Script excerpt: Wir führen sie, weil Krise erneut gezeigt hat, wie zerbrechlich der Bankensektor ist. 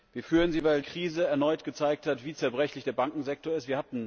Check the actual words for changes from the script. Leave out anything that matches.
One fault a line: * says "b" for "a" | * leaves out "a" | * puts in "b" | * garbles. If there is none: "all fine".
all fine